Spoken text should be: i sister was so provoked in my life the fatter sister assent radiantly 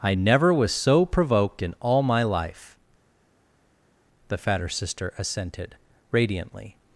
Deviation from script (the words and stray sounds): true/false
true